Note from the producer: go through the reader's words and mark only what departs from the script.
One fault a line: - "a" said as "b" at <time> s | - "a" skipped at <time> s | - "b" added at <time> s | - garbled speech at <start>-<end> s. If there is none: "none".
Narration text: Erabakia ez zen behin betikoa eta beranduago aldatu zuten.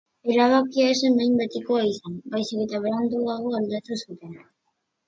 - "izan baizik" added at 1.9 s